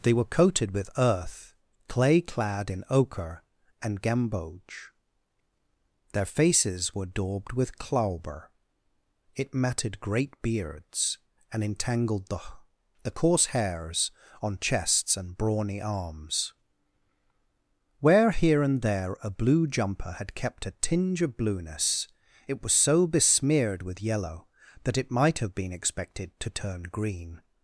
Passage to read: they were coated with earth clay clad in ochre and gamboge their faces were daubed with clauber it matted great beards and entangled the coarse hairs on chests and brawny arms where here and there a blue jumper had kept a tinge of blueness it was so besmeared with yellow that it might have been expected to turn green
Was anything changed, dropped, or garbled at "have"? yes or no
no